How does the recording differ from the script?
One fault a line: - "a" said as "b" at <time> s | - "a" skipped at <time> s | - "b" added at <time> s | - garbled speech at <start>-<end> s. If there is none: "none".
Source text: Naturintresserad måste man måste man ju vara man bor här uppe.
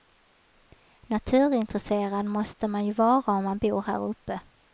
- "måste man" skipped at 2.9 s
- "om" added at 3.3 s